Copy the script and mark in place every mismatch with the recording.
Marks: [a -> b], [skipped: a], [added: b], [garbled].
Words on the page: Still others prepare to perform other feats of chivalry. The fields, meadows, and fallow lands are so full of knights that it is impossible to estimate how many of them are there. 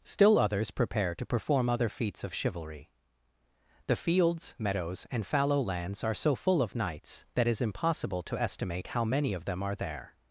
Still others prepare to perform other feats of chivalry. The fields, meadows, and fallow lands are so full of knights that [skipped: it] is impossible to estimate how many of them are there.